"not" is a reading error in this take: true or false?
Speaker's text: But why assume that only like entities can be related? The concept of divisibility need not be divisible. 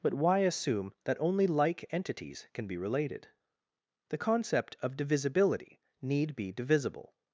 true